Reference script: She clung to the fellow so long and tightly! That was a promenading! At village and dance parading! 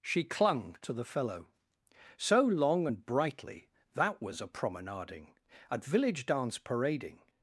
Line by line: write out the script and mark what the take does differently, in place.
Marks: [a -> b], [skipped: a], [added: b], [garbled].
She clung to the fellow so long and [tightly! -> brightly] That was a promenading! At village [skipped: and] dance parading!